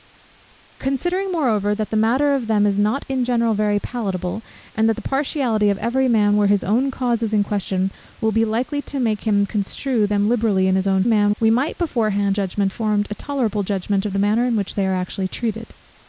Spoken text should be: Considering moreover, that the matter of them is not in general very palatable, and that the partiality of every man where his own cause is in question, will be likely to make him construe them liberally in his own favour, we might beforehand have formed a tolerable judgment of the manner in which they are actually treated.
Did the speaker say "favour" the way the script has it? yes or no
no